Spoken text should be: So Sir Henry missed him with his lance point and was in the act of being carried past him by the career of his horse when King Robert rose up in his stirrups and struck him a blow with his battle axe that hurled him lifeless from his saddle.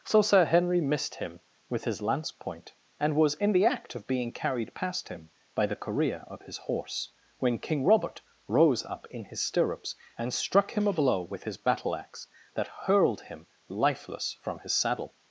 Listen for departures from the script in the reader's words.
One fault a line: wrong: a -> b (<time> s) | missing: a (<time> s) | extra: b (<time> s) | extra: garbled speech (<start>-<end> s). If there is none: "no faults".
no faults